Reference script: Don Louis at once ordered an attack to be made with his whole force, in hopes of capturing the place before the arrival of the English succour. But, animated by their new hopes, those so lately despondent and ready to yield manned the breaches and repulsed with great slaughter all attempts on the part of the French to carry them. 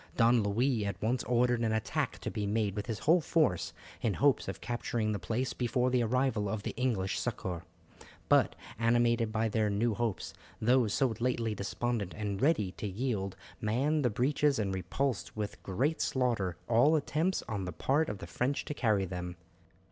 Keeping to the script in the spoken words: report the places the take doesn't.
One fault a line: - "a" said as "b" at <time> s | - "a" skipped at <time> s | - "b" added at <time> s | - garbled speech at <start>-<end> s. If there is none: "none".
none